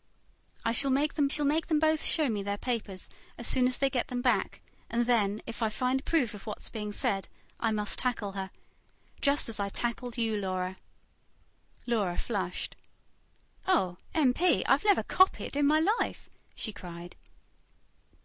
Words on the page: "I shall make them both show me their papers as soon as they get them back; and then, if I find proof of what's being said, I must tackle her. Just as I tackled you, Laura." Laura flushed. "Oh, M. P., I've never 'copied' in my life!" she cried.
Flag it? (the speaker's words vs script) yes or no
yes